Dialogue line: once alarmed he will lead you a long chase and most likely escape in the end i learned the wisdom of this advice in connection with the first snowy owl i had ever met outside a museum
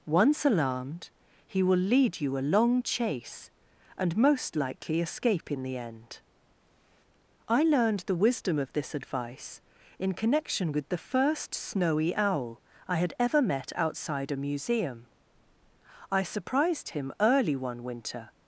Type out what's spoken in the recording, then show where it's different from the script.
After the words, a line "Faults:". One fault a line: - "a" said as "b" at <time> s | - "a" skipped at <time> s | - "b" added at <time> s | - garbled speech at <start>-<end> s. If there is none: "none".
once alarmed he will lead you a long chase and most likely escape in the end i learned the wisdom of this advice in connection with the first snowy owl i had ever met outside a museum i surprised him early one winter
Faults:
- "i surprised him early one winter" added at 16.1 s